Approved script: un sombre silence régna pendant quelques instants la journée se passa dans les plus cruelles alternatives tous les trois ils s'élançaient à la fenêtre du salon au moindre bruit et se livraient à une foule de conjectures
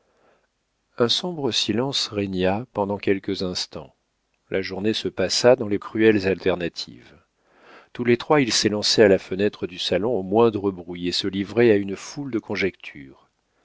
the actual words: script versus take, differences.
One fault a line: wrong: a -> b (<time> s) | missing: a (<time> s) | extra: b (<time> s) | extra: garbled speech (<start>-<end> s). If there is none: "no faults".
missing: plus (5.8 s)